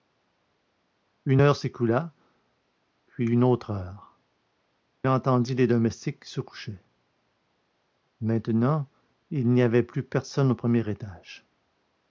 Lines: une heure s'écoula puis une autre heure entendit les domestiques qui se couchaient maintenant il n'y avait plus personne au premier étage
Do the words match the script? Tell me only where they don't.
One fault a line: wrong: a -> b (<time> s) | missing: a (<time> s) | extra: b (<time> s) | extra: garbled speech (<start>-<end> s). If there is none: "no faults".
no faults